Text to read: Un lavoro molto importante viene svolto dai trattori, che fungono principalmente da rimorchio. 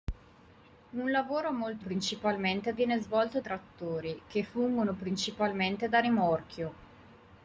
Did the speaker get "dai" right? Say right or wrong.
wrong